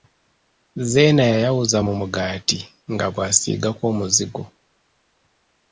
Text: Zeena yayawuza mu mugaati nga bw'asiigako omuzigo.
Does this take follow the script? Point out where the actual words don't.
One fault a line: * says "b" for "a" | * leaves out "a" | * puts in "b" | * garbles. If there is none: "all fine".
all fine